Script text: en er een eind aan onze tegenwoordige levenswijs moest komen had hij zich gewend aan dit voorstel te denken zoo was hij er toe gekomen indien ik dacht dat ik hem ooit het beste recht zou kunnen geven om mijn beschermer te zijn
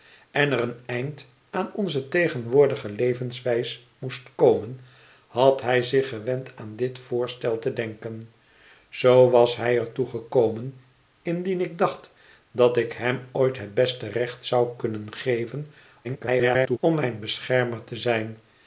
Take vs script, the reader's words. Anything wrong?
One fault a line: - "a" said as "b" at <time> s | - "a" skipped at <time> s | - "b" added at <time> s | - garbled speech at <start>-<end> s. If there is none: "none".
- garbled speech at 16.0-16.8 s